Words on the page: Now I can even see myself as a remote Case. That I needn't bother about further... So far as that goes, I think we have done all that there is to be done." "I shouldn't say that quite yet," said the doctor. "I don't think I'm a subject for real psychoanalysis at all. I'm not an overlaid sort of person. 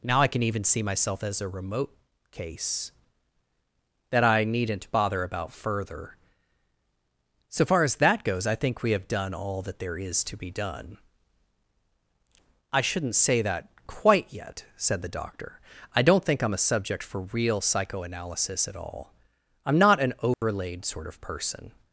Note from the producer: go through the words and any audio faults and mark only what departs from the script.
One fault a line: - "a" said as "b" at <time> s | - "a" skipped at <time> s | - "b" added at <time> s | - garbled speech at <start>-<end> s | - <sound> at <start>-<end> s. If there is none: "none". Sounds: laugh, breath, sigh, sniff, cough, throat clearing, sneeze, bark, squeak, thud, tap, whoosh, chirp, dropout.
- dropout at 20.3-20.4 s